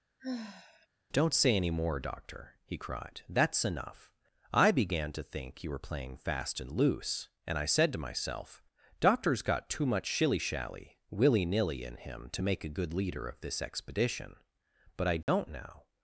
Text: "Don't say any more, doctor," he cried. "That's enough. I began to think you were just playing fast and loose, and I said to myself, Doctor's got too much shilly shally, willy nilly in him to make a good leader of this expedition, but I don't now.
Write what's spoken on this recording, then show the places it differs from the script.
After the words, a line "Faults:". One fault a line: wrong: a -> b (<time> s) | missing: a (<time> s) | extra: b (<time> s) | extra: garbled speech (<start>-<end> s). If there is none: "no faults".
"Don't say any more, doctor," he cried. "That's enough. I began to think you were playing fast and loose, and I said to myself, Doctor's got too much shilly shally, willy nilly in him to make a good leader of this expedition, but I don't now.
Faults:
missing: just (5.8 s)